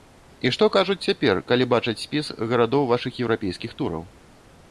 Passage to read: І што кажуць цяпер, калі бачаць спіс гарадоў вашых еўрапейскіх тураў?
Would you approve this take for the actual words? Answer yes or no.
yes